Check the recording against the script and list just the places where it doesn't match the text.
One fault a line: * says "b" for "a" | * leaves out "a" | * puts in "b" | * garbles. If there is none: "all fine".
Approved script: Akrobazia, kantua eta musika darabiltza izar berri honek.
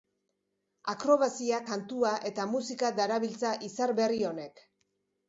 all fine